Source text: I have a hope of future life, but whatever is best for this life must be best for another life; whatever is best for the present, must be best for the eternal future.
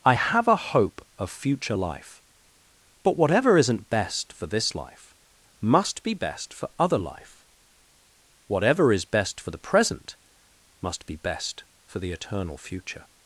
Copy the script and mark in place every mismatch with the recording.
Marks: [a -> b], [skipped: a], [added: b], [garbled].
I have a hope of future life, but whatever [is -> isn't] best for this life must be best for [another -> other] life; whatever is best for the present, must be best for the eternal future.